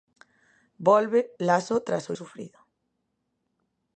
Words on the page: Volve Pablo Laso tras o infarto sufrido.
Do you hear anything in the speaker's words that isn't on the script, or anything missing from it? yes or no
yes